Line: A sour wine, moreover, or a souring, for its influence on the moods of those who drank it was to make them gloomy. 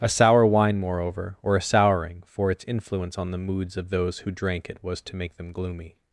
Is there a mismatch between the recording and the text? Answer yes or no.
no